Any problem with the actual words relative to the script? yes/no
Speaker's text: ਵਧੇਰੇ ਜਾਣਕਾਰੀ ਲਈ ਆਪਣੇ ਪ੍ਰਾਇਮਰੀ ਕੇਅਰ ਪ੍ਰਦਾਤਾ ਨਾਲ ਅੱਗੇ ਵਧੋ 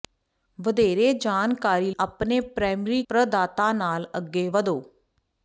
yes